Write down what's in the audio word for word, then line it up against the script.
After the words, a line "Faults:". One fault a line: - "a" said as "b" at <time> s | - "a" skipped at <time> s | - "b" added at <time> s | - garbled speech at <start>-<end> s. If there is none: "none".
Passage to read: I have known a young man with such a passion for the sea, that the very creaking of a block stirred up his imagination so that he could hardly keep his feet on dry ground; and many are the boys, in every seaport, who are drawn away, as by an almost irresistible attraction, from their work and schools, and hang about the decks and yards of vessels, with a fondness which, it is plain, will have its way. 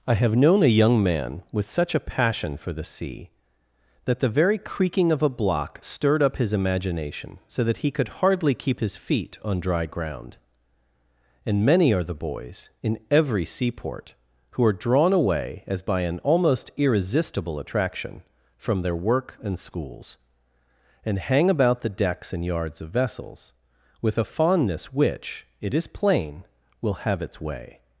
I have known a young man with such a passion for the sea, that the very creaking of a block stirred up his imagination so that he could hardly keep his feet on dry ground; and many are the boys, in every seaport, who are drawn away, as by an almost irresistible attraction, from their work and schools, and hang about the decks and yards of vessels, with a fondness which, it is plain, will have its way.
Faults:
none